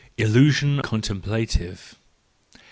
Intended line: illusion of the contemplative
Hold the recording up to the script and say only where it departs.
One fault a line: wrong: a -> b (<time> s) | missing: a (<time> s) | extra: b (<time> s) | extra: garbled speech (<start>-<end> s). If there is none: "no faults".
missing: of the (0.8 s)